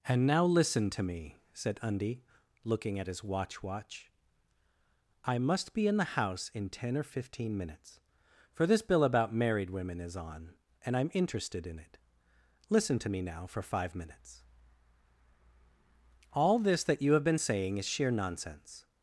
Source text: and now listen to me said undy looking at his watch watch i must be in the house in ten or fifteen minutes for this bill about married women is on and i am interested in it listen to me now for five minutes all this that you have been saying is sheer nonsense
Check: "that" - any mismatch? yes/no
no